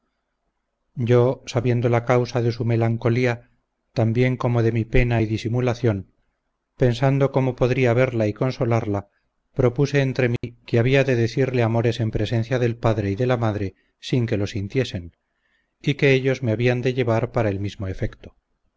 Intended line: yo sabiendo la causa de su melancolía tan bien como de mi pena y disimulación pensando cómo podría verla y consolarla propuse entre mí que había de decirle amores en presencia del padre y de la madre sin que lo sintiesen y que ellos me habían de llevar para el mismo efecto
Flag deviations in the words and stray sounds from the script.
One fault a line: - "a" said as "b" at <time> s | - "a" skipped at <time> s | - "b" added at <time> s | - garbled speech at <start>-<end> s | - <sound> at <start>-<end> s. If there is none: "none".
- dropout at 10.4-10.4 s